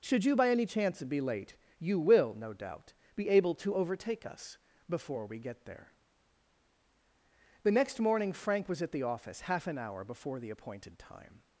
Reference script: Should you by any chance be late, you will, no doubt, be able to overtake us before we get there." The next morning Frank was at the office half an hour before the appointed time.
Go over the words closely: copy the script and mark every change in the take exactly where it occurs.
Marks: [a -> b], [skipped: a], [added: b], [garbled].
Should you by any chance be late, you will, no doubt, be able to overtake us before we get there." The next morning Frank was at the office half an hour before the appointed time.